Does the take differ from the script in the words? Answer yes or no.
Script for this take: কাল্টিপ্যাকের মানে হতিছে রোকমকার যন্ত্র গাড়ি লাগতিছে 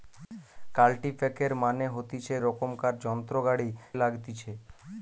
no